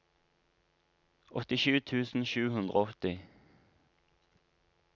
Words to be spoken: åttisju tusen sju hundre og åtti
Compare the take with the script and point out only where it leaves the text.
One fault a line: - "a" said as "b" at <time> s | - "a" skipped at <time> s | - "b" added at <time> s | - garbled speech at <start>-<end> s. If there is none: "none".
none